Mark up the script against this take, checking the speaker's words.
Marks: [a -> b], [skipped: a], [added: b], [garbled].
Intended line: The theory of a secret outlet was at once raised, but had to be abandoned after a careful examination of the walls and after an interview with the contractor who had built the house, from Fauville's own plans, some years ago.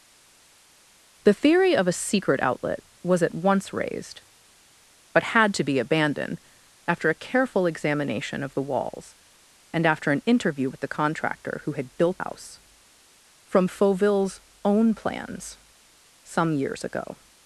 The theory of a secret outlet was at once raised, but had to be abandoned after a careful examination of the walls and after an interview with the contractor who had built [skipped: the] house, from Fauville's own plans, some years ago.